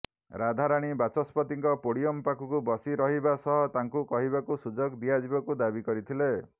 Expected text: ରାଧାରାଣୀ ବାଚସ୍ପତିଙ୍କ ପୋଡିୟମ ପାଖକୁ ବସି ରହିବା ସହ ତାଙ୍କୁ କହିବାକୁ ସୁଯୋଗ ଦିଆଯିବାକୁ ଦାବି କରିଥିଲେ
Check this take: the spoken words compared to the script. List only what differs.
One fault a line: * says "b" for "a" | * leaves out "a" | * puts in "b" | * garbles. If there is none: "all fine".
all fine